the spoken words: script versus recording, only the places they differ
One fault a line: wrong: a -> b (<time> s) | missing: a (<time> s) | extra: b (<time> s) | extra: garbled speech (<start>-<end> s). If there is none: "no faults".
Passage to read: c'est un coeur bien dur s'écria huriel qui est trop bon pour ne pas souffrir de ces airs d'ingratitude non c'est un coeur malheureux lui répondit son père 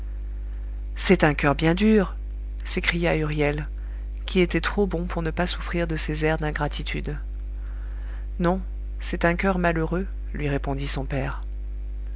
wrong: est -> était (4.4 s)